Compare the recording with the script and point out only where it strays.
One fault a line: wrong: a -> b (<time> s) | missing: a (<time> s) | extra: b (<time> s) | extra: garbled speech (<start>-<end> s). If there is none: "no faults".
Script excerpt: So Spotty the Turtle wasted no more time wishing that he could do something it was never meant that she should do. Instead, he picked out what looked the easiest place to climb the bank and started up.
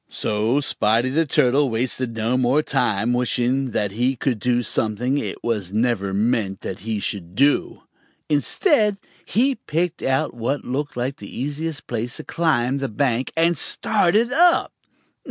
wrong: she -> he (6.8 s)
extra: like (11.0 s)